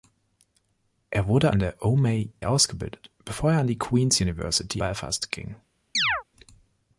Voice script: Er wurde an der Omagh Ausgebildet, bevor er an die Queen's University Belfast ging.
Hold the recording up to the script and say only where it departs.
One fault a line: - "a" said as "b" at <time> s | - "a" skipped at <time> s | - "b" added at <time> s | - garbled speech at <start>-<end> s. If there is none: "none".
none